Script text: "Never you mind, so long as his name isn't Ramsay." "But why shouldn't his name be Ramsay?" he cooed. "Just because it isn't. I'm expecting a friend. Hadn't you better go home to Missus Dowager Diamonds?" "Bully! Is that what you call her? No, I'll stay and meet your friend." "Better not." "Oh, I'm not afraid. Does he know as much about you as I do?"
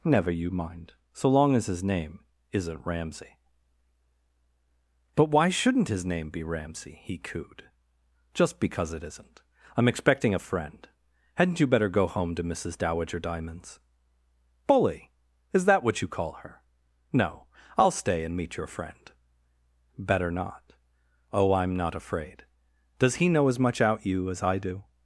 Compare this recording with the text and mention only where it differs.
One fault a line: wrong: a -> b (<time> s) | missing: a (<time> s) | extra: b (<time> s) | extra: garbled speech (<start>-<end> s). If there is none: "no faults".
wrong: about -> out (23.8 s)